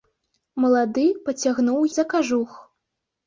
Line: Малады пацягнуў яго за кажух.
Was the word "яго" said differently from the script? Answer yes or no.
yes